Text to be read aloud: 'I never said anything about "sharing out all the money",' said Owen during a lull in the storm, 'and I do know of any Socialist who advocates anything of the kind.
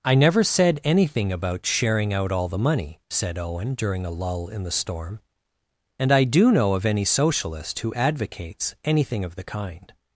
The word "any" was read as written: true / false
true